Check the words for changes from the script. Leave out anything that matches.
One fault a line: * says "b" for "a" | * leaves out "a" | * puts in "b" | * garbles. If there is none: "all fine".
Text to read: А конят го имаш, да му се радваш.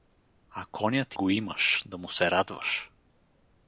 all fine